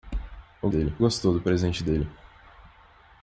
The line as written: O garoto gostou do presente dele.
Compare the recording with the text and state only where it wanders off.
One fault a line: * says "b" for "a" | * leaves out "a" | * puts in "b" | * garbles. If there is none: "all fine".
* says "dele" for "garoto"